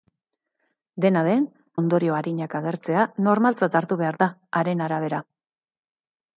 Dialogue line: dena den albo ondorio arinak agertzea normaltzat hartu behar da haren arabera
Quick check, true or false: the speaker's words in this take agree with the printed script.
false